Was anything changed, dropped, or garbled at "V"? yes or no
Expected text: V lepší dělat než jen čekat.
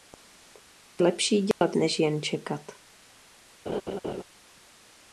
no